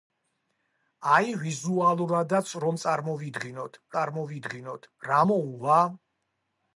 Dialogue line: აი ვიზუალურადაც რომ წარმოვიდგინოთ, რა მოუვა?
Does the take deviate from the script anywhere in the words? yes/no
yes